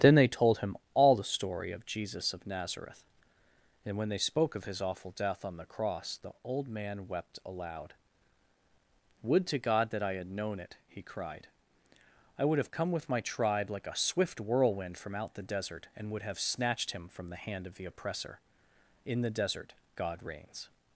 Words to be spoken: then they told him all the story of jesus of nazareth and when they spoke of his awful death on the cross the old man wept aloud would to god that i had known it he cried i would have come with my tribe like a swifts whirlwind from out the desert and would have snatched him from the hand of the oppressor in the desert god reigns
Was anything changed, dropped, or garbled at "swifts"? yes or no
yes